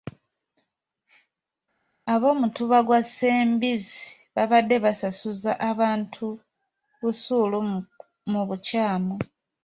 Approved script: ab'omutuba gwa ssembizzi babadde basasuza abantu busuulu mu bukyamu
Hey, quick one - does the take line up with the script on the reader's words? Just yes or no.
yes